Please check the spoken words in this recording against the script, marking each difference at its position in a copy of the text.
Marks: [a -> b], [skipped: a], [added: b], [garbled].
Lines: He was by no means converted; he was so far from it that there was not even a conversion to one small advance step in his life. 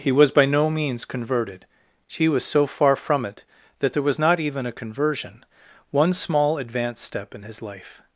He was by no means converted; he was so far from it that there was not even a conversion [skipped: to] one small advance step in his life.